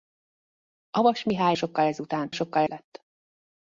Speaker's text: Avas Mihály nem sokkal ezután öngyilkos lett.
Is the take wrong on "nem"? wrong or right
wrong